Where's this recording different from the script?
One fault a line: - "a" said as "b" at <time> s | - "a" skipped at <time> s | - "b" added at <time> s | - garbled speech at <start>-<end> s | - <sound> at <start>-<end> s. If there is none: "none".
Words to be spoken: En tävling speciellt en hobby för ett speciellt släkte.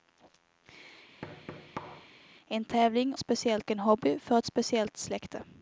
- thud at 1.2-2.1 s